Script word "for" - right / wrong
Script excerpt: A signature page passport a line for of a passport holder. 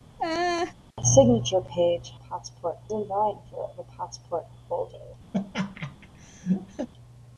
right